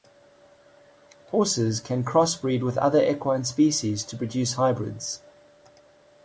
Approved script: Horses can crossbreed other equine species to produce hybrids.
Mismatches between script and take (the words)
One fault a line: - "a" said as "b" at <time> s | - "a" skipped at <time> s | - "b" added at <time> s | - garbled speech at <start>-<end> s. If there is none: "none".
- "with" added at 2.6 s